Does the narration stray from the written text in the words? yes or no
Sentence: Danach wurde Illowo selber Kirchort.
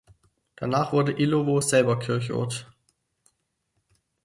no